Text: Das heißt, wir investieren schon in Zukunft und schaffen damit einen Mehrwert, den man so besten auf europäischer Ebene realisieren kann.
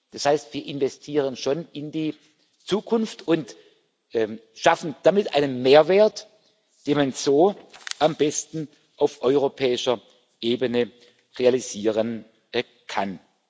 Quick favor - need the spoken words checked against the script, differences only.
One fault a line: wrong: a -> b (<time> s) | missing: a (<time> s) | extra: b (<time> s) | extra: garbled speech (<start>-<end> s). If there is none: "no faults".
extra: die (1.9 s)
extra: am (8.0 s)